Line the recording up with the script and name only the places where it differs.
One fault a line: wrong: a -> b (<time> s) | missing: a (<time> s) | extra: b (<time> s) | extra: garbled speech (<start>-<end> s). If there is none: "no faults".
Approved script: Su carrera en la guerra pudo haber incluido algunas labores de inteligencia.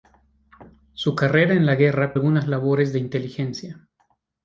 missing: pudo haber incluido (2.2 s)